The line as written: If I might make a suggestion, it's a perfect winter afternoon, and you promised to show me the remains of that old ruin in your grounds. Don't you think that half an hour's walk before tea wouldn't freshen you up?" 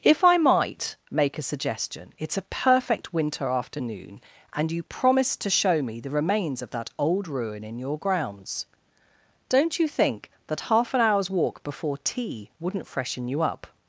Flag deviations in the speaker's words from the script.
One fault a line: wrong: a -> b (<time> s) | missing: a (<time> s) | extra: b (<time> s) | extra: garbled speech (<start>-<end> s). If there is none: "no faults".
no faults